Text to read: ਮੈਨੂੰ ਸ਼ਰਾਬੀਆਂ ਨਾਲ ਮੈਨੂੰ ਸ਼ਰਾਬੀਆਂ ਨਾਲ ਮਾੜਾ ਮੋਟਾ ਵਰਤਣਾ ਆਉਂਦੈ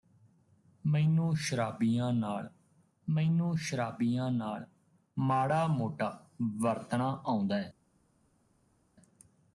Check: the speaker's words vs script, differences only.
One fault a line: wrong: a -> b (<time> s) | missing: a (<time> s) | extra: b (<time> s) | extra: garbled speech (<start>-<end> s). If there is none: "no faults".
no faults